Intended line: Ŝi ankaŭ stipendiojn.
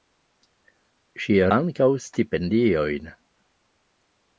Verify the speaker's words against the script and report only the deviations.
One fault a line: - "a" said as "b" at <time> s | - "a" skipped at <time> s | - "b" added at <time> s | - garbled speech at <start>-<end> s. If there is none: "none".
none